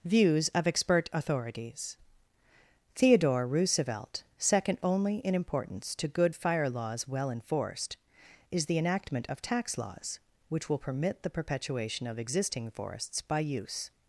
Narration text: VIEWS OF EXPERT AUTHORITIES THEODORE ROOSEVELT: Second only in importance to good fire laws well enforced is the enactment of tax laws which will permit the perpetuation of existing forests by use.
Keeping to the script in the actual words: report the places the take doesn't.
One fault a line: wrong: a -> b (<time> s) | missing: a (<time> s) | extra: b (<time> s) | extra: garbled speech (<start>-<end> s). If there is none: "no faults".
no faults